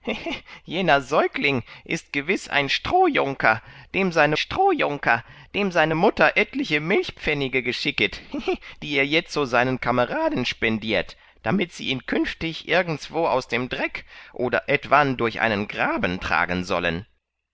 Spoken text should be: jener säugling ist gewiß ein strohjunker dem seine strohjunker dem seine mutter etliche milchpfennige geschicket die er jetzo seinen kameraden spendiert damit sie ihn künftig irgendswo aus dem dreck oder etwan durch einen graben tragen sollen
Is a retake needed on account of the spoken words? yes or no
no